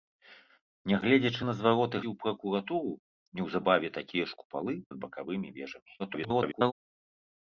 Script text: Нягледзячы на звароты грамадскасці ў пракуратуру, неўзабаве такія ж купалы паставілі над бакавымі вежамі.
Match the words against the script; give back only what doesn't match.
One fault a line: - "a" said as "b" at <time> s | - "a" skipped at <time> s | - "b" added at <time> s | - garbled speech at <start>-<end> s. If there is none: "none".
- "грамадскасці" skipped at 2.0 s
- "паставілі" skipped at 4.7 s
- garbled speech at 6.0-6.7 s